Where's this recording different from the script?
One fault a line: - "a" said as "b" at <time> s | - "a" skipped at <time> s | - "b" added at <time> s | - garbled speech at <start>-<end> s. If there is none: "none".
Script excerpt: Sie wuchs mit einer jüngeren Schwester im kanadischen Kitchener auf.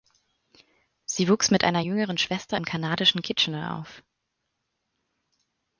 none